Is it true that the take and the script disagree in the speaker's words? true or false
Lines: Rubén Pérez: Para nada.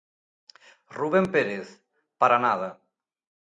false